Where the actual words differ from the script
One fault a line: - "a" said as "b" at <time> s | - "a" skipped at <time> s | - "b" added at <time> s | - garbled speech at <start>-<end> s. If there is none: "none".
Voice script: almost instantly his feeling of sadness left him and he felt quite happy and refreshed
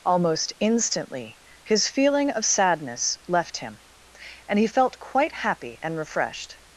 none